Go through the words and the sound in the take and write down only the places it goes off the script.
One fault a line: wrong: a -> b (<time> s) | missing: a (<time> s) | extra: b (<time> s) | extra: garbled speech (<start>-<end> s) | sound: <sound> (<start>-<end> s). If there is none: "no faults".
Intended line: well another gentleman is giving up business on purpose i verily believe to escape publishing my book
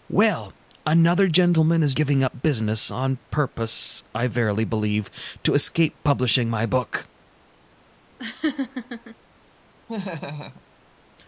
sound: laugh (8.2-9.2 s)
sound: laugh (9.9-10.6 s)